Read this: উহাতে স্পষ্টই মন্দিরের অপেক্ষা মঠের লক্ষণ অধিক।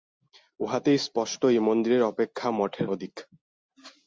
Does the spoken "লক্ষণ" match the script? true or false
false